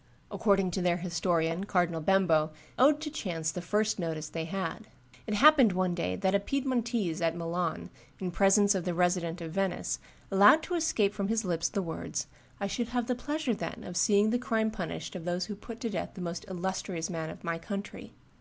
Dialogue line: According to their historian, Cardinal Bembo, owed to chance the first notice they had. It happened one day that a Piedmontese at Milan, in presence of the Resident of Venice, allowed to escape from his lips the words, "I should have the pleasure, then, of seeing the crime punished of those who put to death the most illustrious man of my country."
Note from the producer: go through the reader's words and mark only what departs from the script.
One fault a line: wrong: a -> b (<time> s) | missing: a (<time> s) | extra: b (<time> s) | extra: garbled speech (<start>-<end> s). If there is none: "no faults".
no faults